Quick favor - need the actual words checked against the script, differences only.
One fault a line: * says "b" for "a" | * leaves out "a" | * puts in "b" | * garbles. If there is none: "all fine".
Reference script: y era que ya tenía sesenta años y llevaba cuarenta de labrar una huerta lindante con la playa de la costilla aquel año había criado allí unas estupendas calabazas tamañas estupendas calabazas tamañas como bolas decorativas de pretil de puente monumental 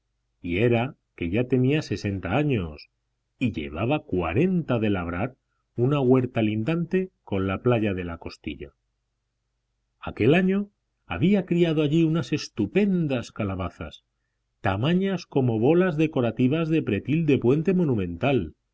* leaves out "estupendas calabazas tamañas"